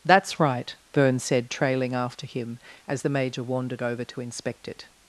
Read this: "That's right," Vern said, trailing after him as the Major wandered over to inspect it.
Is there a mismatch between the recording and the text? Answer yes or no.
no